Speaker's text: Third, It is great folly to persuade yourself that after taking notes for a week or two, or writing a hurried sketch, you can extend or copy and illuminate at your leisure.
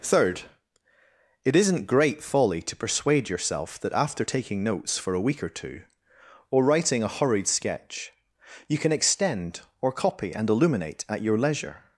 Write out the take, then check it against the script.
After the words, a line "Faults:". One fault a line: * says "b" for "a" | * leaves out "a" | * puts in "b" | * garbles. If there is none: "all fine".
Third, It isn't great folly to persuade yourself that after taking notes for a week or two, or writing a hurried sketch, you can extend or copy and illuminate at your leisure.
Faults:
* says "isn't" for "is"